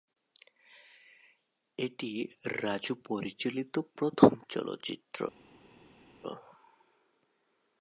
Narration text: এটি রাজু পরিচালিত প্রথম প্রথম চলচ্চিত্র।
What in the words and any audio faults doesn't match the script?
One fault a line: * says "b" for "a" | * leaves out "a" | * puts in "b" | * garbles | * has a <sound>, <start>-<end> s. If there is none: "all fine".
* leaves out "প্রথম"